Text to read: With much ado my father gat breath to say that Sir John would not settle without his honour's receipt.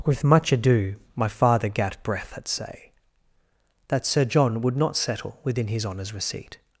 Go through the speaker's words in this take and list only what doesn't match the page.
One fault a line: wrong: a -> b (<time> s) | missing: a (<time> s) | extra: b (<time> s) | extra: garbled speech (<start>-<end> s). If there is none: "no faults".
wrong: to -> at (2.4 s)
wrong: without -> within (5.4 s)